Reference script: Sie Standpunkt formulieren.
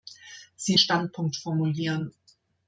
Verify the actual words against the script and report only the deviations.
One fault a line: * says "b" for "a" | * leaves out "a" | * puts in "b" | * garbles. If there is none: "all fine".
all fine